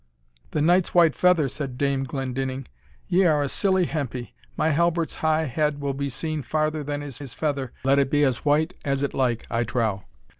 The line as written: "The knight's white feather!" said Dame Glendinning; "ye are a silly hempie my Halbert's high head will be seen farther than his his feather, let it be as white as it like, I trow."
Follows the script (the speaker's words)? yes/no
yes